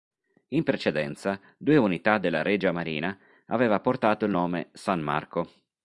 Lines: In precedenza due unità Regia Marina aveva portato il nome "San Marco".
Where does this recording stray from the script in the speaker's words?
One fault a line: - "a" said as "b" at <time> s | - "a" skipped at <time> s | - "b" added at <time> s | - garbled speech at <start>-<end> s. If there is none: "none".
- "della" added at 2.2 s